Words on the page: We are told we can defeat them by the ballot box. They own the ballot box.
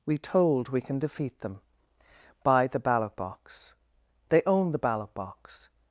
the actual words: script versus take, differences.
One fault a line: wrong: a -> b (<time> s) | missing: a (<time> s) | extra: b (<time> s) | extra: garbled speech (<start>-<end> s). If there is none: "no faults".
missing: are (0.2 s)